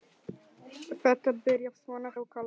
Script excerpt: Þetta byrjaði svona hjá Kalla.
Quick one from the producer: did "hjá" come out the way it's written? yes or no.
no